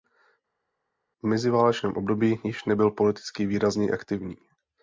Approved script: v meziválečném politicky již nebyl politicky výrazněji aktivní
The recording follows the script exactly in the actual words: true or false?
false